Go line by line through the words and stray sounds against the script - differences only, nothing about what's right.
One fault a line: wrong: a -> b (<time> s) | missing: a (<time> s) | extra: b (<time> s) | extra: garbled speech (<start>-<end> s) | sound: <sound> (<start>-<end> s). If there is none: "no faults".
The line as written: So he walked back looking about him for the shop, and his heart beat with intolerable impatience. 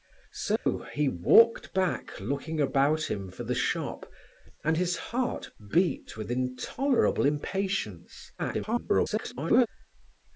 sound: dropout (0.6-0.7 s)
extra: garbled speech (8.4-9.7 s)